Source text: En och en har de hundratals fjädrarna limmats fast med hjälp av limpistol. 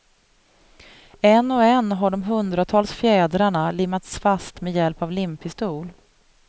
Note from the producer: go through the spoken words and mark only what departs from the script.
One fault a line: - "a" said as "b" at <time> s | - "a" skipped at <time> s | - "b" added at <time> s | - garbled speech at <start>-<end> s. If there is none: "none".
none